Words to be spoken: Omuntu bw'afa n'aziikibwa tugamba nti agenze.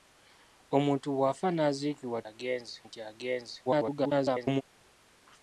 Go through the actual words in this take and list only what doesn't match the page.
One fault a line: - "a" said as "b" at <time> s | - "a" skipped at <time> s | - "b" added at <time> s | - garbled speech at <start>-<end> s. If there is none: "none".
- "tugamba" said as "agenze" at 2.3 s
- garbled speech at 3.7-4.6 s